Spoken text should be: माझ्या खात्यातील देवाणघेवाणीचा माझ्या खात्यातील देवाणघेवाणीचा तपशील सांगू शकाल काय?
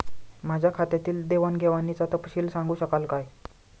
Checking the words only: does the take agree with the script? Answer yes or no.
no